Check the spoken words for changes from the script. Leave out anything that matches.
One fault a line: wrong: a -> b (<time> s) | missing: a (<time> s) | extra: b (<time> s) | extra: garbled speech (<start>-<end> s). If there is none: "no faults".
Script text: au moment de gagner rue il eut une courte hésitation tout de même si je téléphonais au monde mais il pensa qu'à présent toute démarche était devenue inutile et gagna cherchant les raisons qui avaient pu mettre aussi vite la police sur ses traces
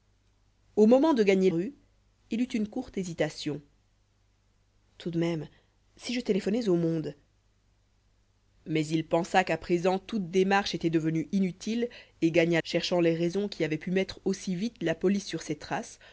no faults